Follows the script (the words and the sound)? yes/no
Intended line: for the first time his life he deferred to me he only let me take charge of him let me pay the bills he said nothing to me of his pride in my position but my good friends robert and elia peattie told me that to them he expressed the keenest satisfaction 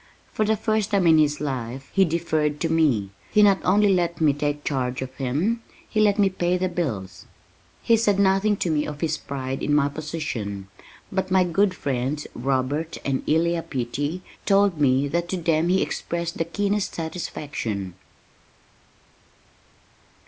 no